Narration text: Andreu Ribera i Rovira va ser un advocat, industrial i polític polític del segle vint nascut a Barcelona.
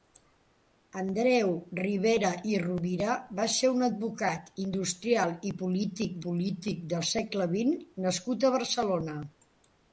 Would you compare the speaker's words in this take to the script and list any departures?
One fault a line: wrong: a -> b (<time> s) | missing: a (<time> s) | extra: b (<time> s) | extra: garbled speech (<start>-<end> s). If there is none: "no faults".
no faults